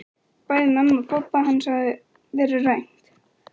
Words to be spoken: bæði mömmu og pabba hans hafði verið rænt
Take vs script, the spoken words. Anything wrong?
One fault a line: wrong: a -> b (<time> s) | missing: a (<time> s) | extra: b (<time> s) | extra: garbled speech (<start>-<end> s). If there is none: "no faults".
no faults